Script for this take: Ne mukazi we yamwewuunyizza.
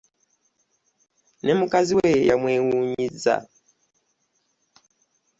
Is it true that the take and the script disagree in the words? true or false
false